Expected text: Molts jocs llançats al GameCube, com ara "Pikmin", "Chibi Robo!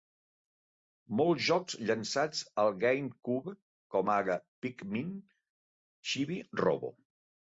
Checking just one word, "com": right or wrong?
right